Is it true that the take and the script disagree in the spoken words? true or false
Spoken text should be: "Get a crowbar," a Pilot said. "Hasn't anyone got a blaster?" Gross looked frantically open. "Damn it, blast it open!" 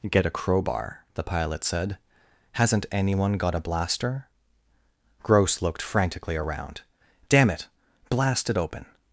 true